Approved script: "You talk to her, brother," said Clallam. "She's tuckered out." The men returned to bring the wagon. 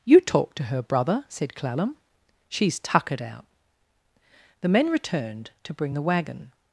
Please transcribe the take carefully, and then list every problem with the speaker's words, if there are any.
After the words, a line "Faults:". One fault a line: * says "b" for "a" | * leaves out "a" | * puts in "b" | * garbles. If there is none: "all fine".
"You talk to her, brother," said Clallam. "She's tuckered out." The men returned to bring the wagon.
Faults:
all fine